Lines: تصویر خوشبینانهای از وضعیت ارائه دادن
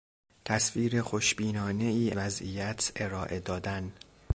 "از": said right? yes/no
no